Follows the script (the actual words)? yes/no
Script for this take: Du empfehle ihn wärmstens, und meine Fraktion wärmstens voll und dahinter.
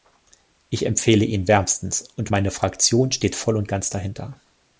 no